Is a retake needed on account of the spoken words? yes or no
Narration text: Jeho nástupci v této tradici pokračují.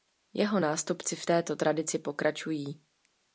no